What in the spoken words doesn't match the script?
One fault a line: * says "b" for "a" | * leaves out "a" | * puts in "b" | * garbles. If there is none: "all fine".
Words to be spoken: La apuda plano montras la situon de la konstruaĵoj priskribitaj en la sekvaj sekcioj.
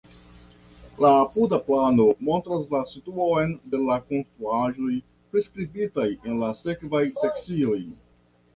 all fine